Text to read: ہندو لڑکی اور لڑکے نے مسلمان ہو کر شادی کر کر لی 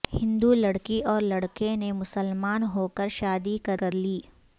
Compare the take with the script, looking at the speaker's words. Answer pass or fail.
pass